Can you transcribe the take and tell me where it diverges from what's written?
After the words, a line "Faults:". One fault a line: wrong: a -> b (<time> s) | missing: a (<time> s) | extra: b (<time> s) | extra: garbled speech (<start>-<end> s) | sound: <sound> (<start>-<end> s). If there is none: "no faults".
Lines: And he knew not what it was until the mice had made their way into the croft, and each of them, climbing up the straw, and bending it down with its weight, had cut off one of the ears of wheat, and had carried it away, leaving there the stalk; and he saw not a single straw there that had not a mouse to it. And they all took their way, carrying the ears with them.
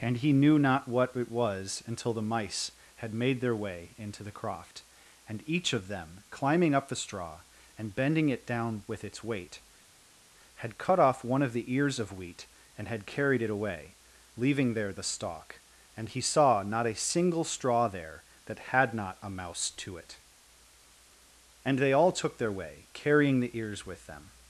And he knew not what it was until the mice had made their way into the croft, and each of them, climbing up the straw, and bending it down with its weight, had cut off one of the ears of wheat, and had carried it away, leaving there the stalk; and he saw not a single straw there that had not a mouse to it. And they all took their way, carrying the ears with them.
Faults:
no faults